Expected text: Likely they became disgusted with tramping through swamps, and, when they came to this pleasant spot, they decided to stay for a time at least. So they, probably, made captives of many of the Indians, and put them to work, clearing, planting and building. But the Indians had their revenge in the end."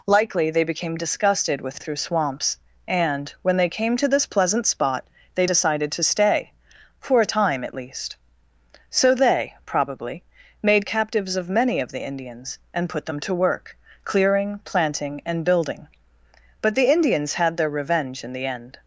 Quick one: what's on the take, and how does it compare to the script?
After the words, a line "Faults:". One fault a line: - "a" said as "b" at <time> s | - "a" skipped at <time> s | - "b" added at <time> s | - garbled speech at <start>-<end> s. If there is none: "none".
Likely they became disgusted with through swamps, and, when they came to this pleasant spot, they decided to stay for a time at least. So they, probably, made captives of many of the Indians, and put them to work, clearing, planting and building. But the Indians had their revenge in the end."
Faults:
- "tramping" skipped at 1.8 s